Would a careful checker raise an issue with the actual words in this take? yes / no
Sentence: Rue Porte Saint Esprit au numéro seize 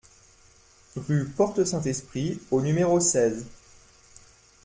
no